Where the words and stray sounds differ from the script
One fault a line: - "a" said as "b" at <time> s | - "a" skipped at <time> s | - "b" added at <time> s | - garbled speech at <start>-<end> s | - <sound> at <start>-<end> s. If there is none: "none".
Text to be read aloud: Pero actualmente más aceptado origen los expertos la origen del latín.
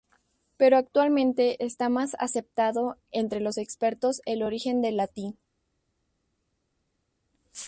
- "está" added at 1.6 s
- "origen" said as "entre" at 3.1 s
- "la" said as "el" at 4.3 s